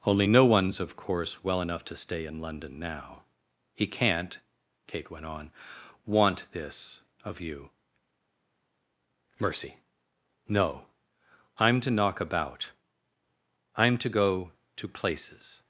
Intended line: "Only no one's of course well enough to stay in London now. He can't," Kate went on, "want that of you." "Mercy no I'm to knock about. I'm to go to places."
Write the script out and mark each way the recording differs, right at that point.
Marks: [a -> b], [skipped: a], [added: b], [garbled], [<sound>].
"Only no one's of course well enough to stay in London now. He can't," Kate went on, "want [that -> this] of you." "Mercy no I'm to knock about. I'm to go to places."